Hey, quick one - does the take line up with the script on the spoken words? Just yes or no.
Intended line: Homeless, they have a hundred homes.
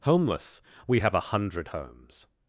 no